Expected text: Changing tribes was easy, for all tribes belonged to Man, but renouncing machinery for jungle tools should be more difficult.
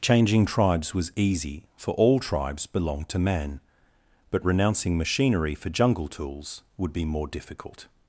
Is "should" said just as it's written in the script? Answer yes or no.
no